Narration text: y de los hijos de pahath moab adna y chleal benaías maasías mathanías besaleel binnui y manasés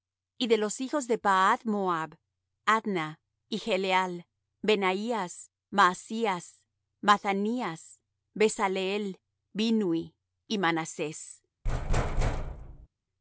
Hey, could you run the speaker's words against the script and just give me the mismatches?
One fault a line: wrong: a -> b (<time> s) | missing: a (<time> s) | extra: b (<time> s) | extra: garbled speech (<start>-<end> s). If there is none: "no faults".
no faults